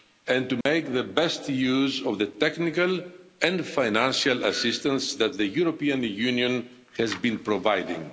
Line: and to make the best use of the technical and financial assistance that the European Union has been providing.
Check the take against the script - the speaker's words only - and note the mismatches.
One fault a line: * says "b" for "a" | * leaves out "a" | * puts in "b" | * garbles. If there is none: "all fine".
all fine